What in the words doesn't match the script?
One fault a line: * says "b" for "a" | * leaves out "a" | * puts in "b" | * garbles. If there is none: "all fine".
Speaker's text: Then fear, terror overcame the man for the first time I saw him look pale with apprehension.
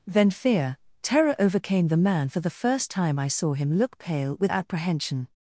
all fine